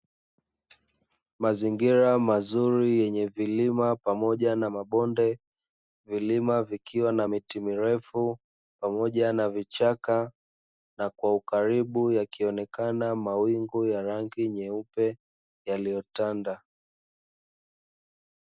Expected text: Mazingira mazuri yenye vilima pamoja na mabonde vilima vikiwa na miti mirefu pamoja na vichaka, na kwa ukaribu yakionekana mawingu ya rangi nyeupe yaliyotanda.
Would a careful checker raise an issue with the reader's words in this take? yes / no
no